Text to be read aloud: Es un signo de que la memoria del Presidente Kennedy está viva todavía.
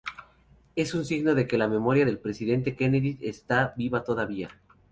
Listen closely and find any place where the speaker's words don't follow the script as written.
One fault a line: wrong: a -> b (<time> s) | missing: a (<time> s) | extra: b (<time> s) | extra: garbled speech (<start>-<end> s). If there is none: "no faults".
no faults